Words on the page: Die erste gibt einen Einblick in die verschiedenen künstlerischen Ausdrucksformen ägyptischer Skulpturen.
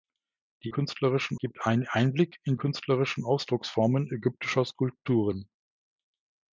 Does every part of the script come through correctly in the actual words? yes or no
no